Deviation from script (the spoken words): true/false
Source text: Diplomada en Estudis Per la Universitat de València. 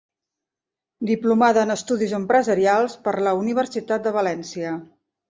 true